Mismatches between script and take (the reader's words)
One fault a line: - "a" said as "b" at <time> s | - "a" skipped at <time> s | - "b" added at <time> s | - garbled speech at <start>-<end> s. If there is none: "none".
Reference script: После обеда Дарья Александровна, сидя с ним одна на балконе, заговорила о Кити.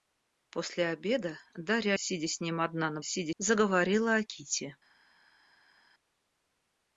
- "Александровна" skipped at 1.9 s
- "балконе" said as "сидя" at 3.0 s